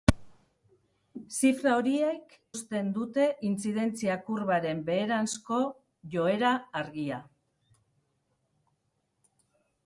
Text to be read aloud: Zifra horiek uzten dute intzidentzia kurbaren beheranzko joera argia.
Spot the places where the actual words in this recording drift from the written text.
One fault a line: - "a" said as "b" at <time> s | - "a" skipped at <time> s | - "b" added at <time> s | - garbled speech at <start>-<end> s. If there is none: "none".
none